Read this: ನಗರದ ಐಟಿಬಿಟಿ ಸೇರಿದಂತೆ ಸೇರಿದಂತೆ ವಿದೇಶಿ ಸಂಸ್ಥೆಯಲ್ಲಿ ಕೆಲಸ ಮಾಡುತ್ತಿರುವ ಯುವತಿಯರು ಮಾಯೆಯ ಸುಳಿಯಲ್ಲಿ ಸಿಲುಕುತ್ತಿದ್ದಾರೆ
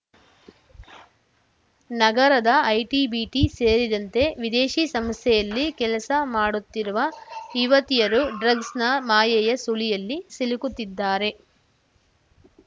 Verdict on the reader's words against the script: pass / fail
fail